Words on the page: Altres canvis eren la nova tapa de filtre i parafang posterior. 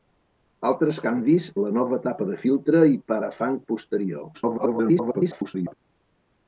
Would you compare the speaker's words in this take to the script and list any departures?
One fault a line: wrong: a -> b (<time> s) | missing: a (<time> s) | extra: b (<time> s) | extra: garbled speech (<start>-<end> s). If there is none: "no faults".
missing: eren (1.5 s)
extra: garbled speech (4.3-5.7 s)